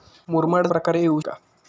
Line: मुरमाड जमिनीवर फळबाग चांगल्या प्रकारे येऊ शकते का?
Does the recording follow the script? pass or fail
fail